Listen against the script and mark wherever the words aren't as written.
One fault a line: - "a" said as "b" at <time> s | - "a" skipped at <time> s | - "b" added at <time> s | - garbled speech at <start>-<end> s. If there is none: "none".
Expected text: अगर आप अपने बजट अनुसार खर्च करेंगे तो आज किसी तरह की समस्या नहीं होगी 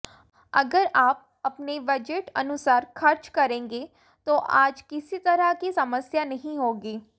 none